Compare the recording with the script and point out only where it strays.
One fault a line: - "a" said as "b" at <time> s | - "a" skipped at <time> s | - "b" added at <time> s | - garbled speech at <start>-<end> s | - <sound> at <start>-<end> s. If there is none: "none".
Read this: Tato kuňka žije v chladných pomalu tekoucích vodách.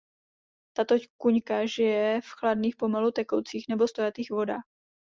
- "nebo stojatých" added at 3.7 s